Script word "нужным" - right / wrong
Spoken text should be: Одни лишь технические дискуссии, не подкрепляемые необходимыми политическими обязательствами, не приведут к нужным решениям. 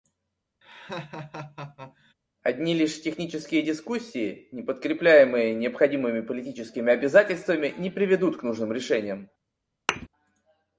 right